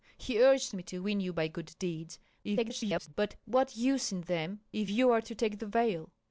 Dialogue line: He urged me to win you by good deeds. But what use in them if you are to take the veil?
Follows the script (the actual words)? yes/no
no